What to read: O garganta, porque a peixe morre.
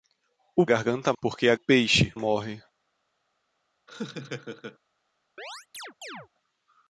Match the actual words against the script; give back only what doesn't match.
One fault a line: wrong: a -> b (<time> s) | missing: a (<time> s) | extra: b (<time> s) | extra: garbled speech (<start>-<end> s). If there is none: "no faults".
no faults